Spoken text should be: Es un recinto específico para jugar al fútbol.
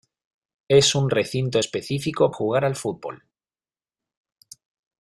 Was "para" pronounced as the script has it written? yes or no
no